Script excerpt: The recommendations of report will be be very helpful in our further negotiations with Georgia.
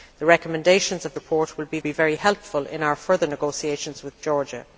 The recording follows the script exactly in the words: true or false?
true